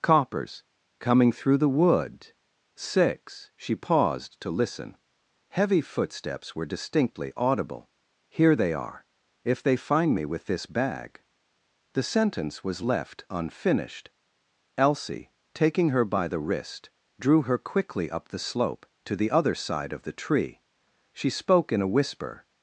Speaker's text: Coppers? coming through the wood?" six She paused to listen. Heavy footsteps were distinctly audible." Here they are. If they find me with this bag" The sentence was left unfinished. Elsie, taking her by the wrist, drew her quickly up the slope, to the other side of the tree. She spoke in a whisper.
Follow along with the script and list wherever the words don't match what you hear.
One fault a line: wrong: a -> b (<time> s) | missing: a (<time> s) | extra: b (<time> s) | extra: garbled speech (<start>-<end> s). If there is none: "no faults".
no faults